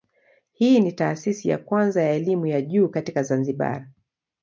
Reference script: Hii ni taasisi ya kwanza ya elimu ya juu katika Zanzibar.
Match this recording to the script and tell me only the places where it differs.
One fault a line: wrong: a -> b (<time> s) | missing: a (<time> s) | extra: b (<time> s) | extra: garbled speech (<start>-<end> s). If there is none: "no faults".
no faults